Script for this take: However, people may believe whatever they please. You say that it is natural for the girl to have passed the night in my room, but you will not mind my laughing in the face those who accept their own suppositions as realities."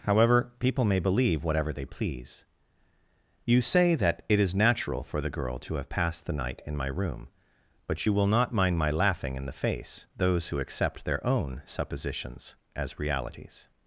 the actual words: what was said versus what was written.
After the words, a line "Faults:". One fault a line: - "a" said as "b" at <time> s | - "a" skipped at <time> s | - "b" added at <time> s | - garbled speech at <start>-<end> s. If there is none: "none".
However, people may believe whatever they please. You say that it is natural for the girl to have passed the night in my room, but you will not mind my laughing in the face those who accept their own suppositions as realities."
Faults:
none